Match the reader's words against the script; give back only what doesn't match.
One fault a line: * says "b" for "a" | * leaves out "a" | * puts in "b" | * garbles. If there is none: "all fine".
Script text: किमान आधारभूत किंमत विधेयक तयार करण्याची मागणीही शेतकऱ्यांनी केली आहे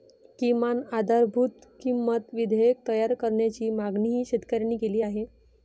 all fine